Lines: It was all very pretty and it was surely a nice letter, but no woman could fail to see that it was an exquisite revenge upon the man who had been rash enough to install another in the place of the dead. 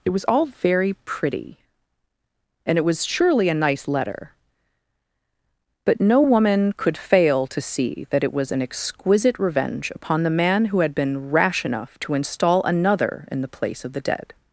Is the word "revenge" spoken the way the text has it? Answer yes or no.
yes